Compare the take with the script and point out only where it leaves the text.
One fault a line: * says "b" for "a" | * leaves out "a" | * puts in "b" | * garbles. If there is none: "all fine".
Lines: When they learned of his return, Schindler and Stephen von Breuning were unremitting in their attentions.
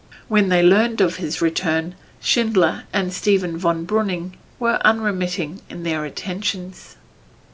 all fine